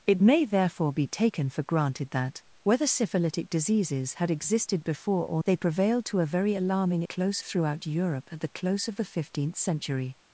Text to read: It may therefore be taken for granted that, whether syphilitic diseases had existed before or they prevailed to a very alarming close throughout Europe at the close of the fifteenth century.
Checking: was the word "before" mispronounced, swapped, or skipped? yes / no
no